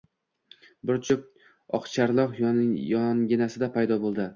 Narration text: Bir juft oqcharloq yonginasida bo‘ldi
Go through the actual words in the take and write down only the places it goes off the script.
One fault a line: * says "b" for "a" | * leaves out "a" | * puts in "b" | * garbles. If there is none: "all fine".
* puts in "paydo"